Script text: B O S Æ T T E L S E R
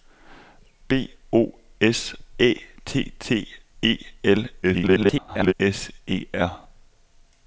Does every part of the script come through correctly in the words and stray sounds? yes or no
no